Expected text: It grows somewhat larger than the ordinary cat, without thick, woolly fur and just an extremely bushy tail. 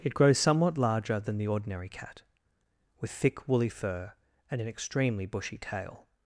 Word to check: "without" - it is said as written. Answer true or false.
false